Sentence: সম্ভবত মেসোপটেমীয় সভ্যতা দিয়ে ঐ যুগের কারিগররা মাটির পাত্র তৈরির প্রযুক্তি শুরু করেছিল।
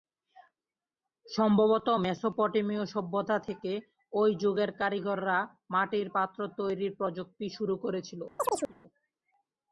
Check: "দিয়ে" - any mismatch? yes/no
yes